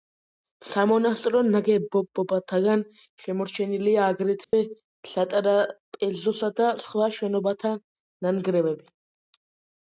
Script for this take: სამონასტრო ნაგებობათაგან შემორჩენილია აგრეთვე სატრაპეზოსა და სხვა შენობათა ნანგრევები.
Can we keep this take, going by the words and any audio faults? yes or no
no